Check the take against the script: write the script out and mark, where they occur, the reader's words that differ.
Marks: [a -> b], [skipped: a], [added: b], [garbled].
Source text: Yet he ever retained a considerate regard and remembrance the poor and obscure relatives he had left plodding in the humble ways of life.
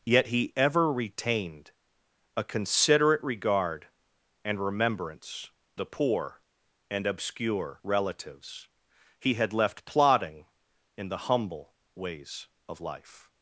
Yet he ever retained a considerate regard and remembrance the poor and obscure relatives he had left plodding in the humble ways of life.